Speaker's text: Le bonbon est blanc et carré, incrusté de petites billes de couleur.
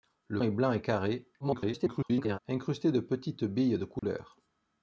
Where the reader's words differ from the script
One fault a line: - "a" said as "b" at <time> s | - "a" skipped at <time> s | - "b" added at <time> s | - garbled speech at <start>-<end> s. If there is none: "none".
- "bonbon" skipped at 0.4 s
- garbled speech at 1.4-2.4 s